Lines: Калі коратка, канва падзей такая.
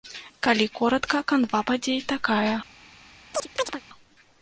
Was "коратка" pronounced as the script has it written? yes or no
yes